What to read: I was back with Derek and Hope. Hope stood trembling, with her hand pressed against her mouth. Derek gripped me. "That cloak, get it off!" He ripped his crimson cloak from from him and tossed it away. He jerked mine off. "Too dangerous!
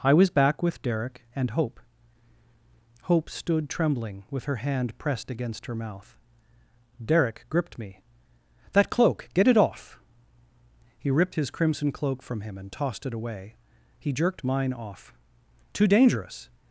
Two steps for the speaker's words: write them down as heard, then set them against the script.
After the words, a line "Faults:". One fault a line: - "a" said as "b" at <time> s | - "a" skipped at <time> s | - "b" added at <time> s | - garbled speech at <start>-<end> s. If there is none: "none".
I was back with Derek and Hope. Hope stood trembling, with her hand pressed against her mouth. Derek gripped me. "That cloak, get it off!" He ripped his crimson cloak from him and tossed it away. He jerked mine off. "Too dangerous!
Faults:
- "from" skipped at 12.4 s